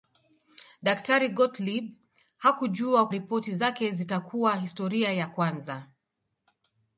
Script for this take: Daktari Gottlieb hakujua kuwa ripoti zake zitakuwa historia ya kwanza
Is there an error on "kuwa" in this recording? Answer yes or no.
yes